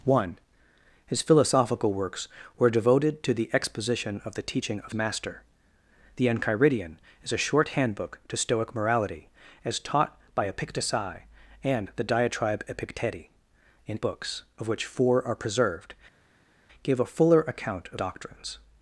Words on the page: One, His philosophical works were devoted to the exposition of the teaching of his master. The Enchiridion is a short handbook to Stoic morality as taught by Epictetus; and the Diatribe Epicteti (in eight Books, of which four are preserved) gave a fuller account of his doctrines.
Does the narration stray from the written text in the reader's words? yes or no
yes